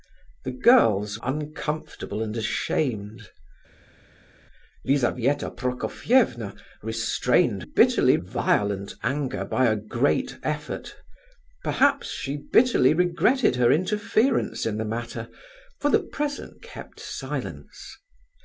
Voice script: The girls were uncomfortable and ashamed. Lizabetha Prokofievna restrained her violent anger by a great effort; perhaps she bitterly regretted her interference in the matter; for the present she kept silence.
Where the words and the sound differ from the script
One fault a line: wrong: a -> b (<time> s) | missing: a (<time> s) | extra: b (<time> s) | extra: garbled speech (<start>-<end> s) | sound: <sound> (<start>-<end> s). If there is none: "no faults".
missing: were (1.2 s)
wrong: her -> bitterly (7.6 s)
missing: she (16.6 s)